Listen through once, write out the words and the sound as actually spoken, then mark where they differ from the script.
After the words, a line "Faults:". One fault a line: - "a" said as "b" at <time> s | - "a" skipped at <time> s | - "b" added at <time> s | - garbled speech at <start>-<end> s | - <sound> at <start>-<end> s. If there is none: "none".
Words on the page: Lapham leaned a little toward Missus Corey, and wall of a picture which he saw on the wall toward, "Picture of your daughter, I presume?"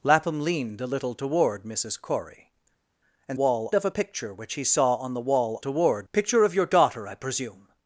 Lapham leaned a little toward Missus Corey, and wall of a picture which he saw on the wall toward, "Picture of your daughter, I presume?"
Faults:
none